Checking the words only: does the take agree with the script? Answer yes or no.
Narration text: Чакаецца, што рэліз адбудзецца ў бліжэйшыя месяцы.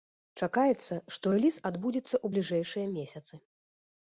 yes